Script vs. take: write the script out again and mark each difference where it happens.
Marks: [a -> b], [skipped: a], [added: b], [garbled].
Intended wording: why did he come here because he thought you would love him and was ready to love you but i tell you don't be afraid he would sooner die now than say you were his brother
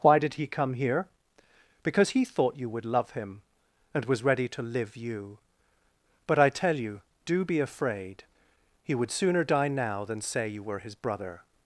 why did he come here because he thought you would love him and was ready to [love -> live] you but i tell you [don't -> do] be afraid he would sooner die now than say you were his brother